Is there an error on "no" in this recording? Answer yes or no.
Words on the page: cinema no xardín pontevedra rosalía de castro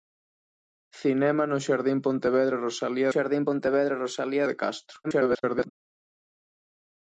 no